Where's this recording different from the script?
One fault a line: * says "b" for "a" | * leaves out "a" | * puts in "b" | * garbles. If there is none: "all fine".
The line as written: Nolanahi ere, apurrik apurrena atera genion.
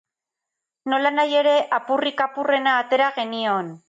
all fine